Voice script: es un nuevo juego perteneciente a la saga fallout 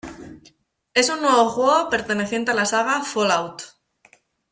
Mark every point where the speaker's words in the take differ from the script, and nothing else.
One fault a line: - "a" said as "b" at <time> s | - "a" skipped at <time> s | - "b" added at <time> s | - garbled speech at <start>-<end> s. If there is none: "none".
none